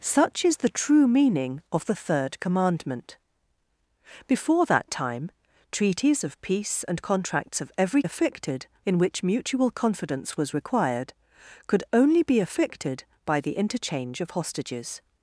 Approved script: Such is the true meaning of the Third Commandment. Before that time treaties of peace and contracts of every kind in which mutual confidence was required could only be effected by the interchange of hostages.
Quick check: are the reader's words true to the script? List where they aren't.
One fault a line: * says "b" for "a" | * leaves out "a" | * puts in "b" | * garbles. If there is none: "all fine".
* says "effected" for "kind"